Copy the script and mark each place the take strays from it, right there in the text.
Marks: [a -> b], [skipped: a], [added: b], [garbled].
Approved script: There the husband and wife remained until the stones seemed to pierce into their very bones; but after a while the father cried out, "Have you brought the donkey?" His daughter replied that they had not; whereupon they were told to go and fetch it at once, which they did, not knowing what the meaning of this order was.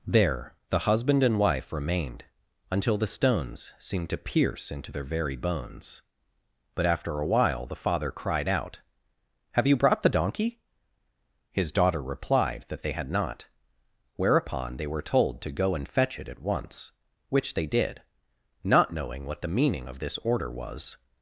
There the husband and wife remained until the stones seemed to pierce into their very bones; but after a while the father cried out, "Have you brought the donkey?" His daughter replied that they had not; whereupon they were told to go and fetch it at once, which they did, not knowing what the meaning of this order was.